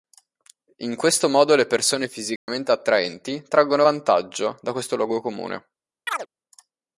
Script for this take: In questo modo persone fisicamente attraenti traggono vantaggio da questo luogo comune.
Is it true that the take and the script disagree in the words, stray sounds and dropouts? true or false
true